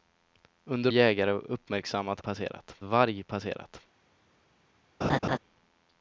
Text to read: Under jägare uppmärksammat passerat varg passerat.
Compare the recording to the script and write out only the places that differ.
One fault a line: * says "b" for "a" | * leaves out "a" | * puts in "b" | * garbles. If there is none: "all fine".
all fine